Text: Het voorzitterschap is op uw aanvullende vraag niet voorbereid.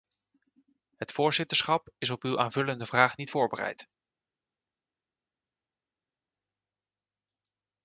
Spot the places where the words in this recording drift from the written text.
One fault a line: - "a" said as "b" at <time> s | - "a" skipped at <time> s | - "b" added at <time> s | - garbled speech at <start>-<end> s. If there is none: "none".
none